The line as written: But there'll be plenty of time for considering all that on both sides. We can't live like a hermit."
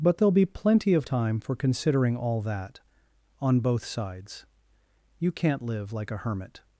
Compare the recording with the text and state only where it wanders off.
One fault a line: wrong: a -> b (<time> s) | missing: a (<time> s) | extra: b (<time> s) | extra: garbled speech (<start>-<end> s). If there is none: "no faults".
wrong: We -> You (5.2 s)